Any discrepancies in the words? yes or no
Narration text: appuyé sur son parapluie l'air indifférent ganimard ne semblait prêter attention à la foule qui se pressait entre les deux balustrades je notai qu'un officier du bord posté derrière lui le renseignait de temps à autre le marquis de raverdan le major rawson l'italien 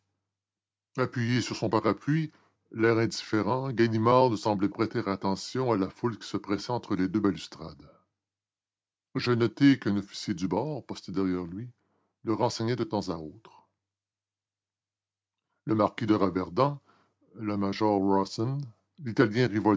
no